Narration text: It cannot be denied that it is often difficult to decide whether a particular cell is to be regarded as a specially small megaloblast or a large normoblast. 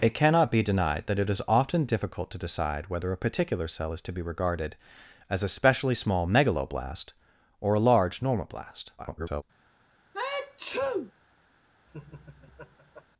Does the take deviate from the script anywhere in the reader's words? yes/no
yes